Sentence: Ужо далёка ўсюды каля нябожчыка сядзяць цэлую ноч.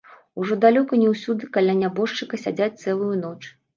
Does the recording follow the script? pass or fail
fail